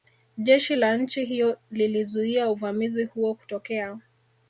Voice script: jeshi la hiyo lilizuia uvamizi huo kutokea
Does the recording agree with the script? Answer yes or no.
no